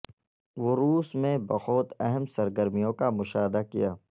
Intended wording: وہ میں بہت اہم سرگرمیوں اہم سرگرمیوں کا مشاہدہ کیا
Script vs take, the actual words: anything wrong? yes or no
yes